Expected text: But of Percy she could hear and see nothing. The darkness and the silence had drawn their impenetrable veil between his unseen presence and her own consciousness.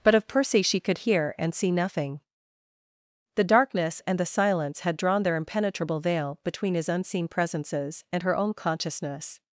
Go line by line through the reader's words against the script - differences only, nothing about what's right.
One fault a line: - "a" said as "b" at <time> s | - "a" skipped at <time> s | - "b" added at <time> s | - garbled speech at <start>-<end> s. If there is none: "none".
- "presence" said as "presences" at 7.3 s